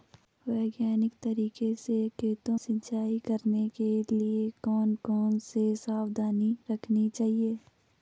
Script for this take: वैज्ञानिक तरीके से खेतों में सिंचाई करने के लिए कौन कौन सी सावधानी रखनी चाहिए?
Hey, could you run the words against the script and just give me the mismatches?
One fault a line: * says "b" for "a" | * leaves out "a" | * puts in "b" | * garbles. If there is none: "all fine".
* leaves out "में"